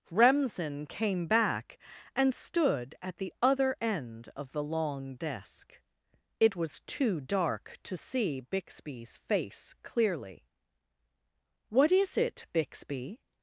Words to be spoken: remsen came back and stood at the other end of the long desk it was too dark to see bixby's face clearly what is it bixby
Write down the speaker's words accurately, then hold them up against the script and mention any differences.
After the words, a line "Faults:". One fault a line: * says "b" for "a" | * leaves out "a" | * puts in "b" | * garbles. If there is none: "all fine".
remsen came back and stood at the other end of the long desk it was too dark to see bixby's face clearly what is it bixby
Faults:
all fine